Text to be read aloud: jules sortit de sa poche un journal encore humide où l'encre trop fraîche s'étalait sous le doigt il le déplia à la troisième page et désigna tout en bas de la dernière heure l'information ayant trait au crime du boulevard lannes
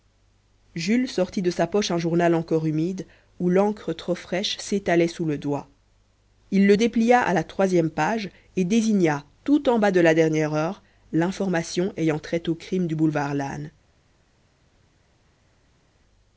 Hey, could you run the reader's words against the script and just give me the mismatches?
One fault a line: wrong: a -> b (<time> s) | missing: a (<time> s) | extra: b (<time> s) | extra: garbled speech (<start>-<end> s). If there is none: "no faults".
no faults